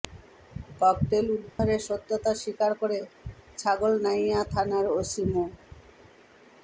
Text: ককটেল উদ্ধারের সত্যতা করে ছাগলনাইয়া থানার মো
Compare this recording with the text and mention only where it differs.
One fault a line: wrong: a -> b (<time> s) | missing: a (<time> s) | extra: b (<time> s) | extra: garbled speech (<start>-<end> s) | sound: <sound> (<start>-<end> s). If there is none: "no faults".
sound: dropout (1.5-1.6 s)
extra: স্বীকার (2.4 s)
extra: ওসি (4.9 s)